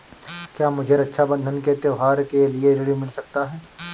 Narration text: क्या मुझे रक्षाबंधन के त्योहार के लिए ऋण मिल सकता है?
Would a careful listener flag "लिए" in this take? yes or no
no